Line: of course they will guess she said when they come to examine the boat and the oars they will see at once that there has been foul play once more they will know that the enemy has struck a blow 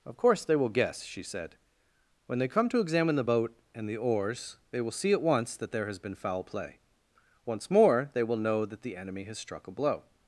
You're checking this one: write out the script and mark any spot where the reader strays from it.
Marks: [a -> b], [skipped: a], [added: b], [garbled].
of course they will guess she said when they come to examine the boat and the oars they will see at once that there has been foul play once more they will know that the enemy has struck a blow